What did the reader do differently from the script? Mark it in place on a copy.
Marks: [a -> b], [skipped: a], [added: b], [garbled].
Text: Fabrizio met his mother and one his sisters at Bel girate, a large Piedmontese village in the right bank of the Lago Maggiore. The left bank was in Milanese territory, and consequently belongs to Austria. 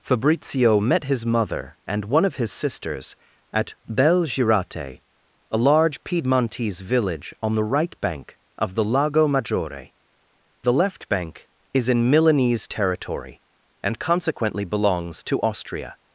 Fabrizio met his mother and one [added: of] his sisters at Bel girate, a large Piedmontese village [in -> on] the right bank of the Lago Maggiore. The left bank [was -> is] in Milanese territory, and consequently belongs to Austria.